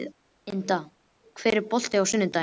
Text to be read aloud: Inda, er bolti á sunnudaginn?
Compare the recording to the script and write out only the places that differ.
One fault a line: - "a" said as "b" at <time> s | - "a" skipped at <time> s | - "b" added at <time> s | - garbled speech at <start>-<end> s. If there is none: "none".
none